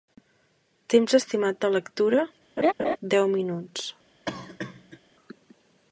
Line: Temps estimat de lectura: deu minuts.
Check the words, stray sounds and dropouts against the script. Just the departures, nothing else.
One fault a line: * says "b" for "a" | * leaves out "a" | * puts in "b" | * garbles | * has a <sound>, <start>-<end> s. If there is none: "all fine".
* has a laugh, 2.6-3.0 s
* has a cough, 4.3-5.0 s